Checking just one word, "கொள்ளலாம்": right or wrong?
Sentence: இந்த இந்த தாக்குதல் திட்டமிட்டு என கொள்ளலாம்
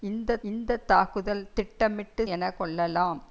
right